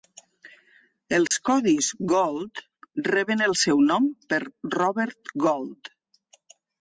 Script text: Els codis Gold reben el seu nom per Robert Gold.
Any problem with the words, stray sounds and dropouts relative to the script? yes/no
yes